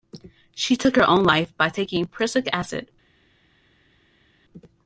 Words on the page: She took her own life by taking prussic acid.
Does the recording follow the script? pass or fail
pass